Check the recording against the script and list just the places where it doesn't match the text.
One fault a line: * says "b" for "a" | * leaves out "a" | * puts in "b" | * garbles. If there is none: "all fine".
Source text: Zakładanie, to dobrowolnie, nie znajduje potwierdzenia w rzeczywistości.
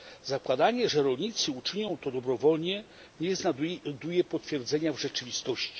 * puts in "że rolnicy uczynią"